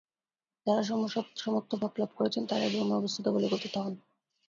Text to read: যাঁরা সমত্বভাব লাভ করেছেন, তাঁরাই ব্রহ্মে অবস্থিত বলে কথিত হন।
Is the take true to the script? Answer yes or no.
yes